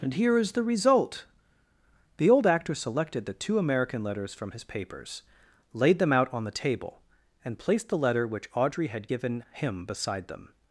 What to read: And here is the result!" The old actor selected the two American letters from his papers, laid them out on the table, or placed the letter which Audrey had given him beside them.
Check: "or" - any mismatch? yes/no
yes